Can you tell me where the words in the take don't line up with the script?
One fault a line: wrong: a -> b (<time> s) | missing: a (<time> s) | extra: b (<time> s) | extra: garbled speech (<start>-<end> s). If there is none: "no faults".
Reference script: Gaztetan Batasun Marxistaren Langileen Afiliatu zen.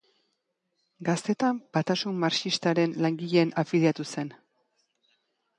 no faults